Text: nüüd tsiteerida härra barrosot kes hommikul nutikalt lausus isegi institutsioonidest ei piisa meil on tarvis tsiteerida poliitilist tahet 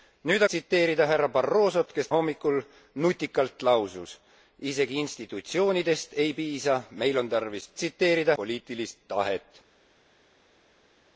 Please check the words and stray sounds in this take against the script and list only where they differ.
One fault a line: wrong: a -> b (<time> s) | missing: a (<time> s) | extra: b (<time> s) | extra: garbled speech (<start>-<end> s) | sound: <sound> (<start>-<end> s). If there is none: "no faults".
no faults